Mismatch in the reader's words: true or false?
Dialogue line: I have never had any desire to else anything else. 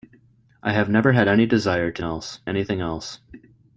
false